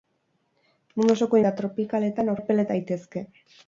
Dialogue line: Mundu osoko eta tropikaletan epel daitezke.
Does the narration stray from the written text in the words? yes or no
no